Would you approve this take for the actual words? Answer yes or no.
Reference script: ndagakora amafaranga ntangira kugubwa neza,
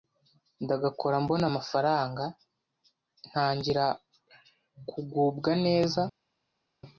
no